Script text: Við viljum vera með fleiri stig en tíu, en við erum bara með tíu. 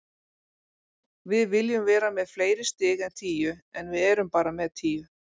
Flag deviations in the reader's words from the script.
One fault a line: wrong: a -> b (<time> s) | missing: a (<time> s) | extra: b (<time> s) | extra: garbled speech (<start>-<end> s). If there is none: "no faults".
no faults